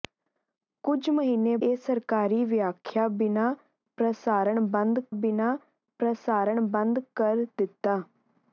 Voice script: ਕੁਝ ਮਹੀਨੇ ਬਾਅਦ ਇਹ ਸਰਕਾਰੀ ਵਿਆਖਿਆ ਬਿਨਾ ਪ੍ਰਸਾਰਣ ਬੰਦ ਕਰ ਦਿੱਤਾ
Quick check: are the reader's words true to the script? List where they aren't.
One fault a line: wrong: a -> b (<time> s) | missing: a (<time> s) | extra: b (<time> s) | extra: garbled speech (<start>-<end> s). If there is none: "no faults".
missing: ਬਾਅਦ (1.6 s)
extra: ਬਿਨਾ ਪ੍ਰਸਾਰਣ ਬੰਦ (5.2 s)